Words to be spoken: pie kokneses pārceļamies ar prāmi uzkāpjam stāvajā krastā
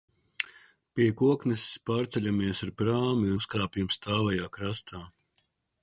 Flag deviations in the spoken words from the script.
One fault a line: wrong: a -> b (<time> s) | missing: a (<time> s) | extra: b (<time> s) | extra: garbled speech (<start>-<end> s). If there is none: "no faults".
no faults